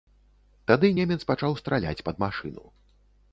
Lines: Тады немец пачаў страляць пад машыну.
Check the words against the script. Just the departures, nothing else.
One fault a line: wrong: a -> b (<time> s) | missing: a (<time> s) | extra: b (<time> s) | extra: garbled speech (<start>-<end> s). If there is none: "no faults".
no faults